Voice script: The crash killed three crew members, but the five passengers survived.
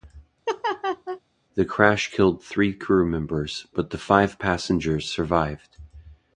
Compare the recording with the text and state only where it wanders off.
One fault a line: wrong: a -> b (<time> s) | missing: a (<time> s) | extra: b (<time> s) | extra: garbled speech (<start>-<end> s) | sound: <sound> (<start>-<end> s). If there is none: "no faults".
sound: laugh (0.5-1.2 s)